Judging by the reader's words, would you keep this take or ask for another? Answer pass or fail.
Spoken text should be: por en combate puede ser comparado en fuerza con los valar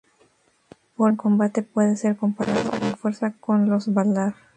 pass